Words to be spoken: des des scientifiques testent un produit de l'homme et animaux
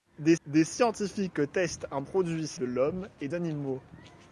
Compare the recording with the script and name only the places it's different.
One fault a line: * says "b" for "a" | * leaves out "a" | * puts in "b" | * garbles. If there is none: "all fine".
all fine